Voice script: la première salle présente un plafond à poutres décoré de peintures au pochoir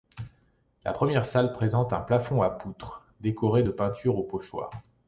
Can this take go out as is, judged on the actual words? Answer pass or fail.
pass